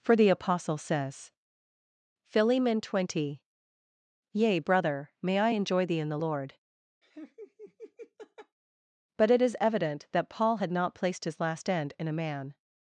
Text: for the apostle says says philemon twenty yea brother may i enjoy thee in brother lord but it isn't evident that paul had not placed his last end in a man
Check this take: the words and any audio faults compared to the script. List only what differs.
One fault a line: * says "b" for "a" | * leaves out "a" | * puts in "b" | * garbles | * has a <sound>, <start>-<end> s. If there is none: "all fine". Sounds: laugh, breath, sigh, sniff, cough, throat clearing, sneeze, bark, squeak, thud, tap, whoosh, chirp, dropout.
* leaves out "says"
* says "the" for "brother"
* has a laugh, 7.0-8.6 s
* says "is" for "isn't"